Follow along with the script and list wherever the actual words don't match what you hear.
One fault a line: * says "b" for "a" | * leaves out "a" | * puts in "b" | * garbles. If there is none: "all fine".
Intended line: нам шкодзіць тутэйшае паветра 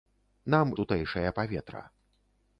* leaves out "шкодзіць"